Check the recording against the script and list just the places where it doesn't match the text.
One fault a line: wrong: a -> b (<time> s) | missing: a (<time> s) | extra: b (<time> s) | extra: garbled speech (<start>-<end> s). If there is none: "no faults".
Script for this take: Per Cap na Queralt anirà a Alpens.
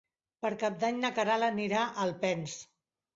extra: d'Any (0.8 s)